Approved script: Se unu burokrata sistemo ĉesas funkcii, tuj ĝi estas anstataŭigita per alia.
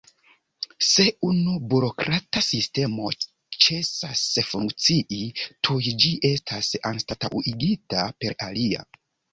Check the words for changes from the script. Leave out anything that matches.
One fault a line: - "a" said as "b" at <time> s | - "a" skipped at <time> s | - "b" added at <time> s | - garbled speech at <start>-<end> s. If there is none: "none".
none